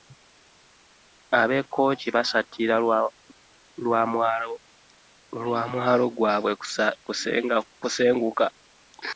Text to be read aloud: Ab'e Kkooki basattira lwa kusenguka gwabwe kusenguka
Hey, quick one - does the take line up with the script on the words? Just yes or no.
no